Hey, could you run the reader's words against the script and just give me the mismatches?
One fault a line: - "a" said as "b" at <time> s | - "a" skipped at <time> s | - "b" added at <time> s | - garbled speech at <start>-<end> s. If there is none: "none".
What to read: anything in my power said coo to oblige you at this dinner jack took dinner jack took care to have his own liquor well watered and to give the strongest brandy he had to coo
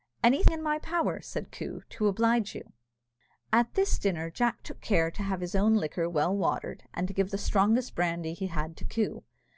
- "dinner jack took" skipped at 4.8 s